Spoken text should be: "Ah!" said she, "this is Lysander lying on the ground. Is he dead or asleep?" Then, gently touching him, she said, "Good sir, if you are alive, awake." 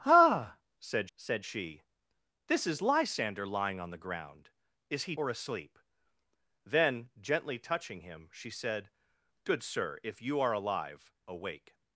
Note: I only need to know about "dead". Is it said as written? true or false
false